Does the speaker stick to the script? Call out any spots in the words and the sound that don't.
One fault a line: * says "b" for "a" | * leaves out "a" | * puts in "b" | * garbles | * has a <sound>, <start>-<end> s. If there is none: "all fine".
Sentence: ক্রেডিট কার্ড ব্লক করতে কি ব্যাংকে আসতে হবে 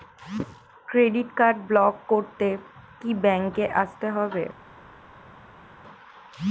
all fine